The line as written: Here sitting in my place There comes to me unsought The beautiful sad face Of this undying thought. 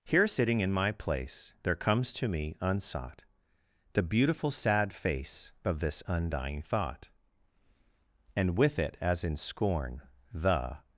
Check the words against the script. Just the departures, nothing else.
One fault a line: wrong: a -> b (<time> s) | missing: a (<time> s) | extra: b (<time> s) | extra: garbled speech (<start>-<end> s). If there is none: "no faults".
extra: And with it as in scorn The (8.3 s)